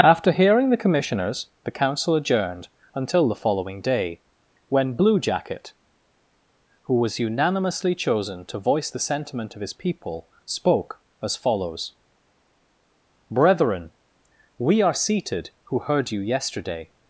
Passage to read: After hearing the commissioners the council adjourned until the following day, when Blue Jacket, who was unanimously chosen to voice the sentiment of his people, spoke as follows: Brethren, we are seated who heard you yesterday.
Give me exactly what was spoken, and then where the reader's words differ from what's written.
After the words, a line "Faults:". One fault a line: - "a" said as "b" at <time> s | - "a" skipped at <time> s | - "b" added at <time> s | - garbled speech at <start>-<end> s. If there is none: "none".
After hearing the commissioners the council adjourned until the following day, when Blue Jacket, who was unanimously chosen to voice the sentiment of his people, spoke as follows: Brethren, we are seated who heard you yesterday.
Faults:
none